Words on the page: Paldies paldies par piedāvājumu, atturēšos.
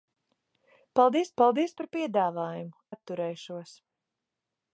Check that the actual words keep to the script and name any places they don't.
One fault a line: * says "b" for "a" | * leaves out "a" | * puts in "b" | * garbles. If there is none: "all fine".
all fine